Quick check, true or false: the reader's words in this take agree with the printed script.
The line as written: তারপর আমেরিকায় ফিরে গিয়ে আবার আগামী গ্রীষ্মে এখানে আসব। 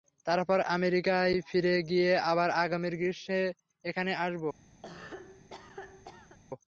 true